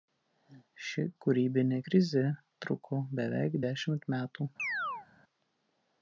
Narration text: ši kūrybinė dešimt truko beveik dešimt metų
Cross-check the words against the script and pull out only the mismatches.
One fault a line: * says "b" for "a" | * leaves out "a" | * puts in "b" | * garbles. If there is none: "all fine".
* says "krizė" for "dešimt"